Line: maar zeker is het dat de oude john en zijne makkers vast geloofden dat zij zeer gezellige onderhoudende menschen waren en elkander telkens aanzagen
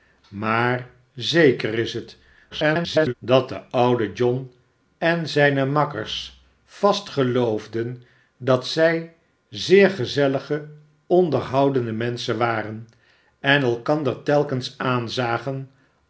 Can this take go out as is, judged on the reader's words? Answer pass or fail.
fail